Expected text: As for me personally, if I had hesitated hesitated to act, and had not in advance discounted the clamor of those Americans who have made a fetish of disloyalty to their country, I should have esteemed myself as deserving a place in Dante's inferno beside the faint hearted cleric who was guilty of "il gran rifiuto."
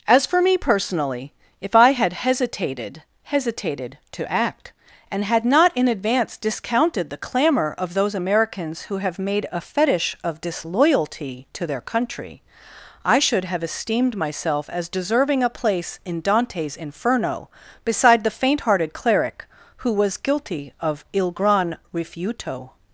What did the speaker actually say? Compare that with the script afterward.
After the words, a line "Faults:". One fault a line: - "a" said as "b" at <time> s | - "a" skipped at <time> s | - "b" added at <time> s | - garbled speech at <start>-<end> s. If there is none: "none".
As for me personally, if I had hesitated hesitated to act, and had not in advance discounted the clamor of those Americans who have made a fetish of disloyalty to their country, I should have esteemed myself as deserving a place in Dante's inferno beside the faint hearted cleric who was guilty of "il gran rifiuto."
Faults:
none